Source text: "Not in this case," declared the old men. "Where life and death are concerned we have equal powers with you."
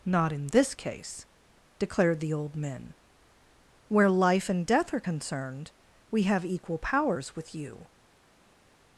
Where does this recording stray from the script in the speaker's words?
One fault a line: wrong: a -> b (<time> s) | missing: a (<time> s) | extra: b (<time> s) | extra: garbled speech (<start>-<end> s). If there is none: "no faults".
no faults